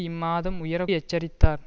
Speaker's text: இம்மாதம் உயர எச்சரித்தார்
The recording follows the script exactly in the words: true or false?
true